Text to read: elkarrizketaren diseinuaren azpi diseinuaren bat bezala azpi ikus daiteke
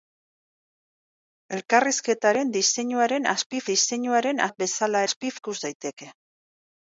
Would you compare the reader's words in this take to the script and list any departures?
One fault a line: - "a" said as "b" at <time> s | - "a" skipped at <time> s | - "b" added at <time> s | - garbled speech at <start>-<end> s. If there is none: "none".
none